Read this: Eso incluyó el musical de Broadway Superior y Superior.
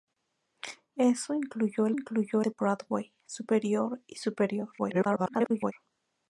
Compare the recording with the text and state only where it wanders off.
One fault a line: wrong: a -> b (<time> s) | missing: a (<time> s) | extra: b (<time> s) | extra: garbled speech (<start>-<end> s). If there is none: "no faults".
wrong: musical -> incluyó (1.9 s)
extra: garbled speech (4.8-5.7 s)